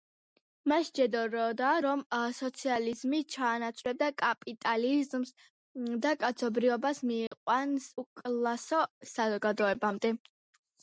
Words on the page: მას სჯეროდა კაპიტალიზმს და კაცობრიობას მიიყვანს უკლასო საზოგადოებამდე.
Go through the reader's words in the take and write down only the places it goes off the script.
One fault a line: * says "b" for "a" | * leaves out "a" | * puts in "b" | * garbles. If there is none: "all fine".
* puts in "რომ სოციალიზმი ჩაანაცვლებდა"